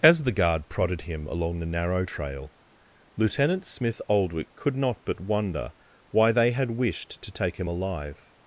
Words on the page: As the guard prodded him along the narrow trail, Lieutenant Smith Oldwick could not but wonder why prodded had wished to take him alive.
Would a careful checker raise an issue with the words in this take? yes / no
yes